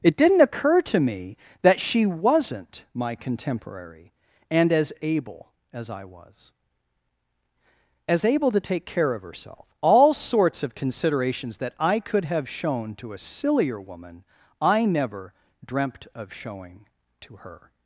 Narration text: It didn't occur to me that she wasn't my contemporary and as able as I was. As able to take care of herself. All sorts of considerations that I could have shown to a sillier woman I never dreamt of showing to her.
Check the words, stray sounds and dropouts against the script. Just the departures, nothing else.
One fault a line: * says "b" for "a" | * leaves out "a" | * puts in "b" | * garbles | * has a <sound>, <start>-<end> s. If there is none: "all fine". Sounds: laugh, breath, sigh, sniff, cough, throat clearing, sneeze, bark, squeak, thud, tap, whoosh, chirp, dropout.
all fine